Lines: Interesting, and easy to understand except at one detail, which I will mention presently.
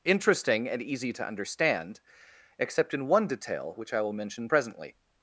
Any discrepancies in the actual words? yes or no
yes